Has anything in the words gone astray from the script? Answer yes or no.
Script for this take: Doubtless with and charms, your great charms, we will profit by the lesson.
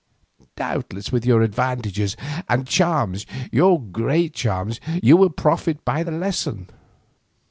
yes